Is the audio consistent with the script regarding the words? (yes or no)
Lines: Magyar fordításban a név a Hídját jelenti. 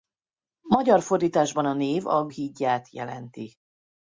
yes